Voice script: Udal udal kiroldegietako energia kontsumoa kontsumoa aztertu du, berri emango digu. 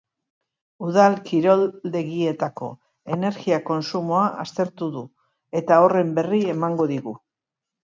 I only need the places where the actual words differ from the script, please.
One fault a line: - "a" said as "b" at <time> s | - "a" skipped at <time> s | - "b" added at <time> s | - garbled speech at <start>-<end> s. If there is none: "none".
- "udal" skipped at 1.2 s
- "kontsumoa" skipped at 4.3 s
- "eta horren" added at 5.7 s